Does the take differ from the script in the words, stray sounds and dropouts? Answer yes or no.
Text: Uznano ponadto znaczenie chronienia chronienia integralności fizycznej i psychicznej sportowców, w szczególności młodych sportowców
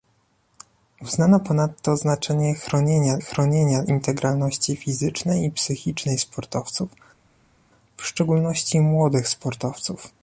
no